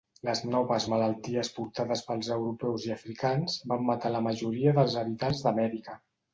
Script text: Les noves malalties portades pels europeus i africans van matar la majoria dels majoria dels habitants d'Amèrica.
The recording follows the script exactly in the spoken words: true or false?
false